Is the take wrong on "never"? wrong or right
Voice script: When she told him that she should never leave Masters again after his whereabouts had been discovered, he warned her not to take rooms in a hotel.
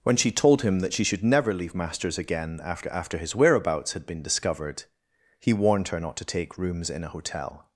right